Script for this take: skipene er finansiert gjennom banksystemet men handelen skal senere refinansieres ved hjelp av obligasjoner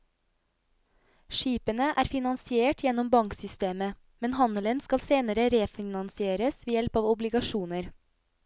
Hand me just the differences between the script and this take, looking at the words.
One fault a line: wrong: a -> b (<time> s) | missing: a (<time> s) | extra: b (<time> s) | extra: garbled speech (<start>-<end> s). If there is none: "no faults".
no faults